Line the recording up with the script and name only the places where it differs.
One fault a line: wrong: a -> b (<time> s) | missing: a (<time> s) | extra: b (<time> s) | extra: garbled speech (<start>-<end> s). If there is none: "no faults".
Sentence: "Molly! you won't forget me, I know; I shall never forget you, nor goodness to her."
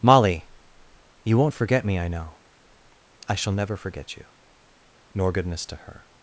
no faults